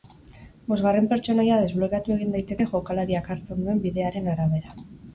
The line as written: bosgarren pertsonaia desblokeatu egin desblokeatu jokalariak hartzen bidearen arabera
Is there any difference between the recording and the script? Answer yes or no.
yes